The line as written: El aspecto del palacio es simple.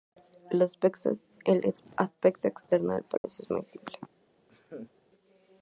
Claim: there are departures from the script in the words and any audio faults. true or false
true